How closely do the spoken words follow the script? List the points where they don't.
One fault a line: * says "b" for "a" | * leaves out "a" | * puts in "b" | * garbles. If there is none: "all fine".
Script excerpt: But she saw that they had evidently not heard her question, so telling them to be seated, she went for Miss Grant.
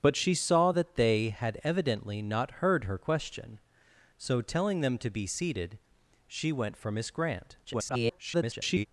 * garbles